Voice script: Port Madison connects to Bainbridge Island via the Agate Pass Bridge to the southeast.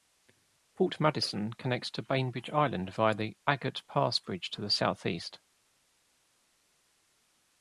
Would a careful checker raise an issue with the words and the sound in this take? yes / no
no